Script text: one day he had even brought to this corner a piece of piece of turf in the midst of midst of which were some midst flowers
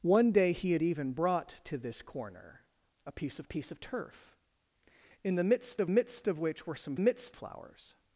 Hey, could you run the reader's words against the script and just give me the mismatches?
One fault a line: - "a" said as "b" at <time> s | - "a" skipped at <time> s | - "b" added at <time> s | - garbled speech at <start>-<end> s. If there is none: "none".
none